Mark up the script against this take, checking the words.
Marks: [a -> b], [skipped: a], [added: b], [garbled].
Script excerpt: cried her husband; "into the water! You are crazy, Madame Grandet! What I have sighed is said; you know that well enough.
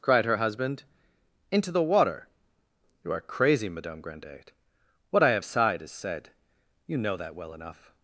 cried her husband; "into the water! You are crazy, Madame Grandet! What I have sighed is said; you know that well enough.